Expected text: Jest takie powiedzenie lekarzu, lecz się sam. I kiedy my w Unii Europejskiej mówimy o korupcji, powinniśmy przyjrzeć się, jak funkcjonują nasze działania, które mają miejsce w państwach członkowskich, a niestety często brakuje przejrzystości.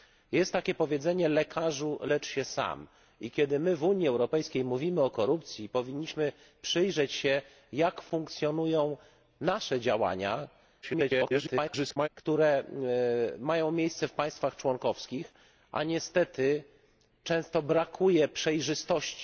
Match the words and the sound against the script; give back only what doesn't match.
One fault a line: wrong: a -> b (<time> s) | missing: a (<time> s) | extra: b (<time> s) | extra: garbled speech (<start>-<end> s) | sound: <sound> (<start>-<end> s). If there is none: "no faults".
extra: garbled speech (10.8-12.1 s)